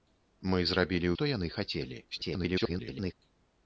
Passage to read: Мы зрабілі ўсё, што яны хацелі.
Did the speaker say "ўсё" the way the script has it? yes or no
no